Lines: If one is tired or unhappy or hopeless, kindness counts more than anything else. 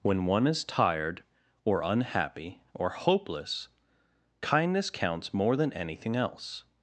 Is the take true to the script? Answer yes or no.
no